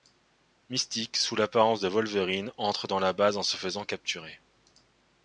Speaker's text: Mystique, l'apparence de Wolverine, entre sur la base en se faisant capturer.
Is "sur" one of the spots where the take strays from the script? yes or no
yes